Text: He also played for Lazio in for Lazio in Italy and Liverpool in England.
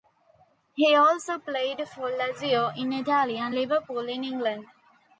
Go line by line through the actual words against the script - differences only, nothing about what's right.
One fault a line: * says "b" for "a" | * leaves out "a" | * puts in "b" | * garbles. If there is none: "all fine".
* leaves out "for Lazio in"